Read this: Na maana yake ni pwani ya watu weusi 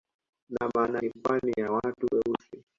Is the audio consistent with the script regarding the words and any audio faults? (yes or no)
no